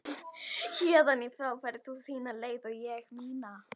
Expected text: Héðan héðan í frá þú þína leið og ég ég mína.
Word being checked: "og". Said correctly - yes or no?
yes